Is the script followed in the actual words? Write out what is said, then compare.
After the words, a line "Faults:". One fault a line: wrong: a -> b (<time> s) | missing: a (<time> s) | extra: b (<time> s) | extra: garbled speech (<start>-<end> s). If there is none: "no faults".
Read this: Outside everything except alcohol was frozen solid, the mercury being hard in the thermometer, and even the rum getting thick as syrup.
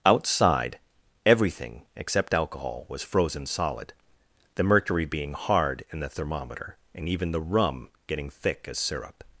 Outside everything except alcohol was frozen solid, the mercury being hard in the thermometer, and even the rum getting thick as syrup.
Faults:
no faults